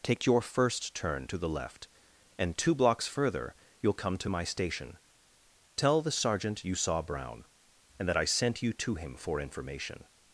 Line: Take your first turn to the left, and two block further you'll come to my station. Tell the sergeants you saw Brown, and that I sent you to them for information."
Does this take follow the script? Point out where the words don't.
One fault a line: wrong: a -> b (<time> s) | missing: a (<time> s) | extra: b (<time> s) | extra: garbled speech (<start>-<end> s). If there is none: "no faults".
wrong: block -> blocks (2.7 s)
wrong: sergeants -> sergeant (6.1 s)
wrong: them -> him (9.0 s)